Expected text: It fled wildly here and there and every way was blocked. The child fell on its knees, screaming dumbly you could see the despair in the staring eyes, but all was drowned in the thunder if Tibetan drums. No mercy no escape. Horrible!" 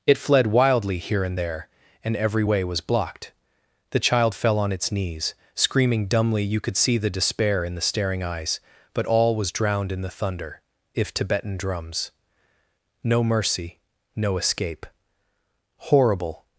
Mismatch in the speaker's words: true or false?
false